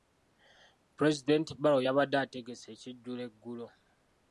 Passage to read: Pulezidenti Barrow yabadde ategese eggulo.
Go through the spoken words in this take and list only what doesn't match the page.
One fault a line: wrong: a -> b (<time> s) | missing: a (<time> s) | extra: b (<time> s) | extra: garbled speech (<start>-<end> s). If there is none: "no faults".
extra: ekijjulo (2.7 s)